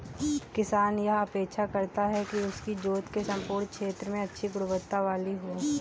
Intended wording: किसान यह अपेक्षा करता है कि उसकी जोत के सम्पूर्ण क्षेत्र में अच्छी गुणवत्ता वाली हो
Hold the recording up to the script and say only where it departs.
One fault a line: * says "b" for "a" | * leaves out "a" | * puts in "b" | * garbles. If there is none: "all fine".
all fine